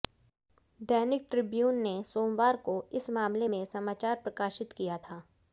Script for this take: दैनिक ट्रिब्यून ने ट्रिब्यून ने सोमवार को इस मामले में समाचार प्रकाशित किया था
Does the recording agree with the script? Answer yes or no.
no